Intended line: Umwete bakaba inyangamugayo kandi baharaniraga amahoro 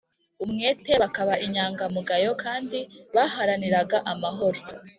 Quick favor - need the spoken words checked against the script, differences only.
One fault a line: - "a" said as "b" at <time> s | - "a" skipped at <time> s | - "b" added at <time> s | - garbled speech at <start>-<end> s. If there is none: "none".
none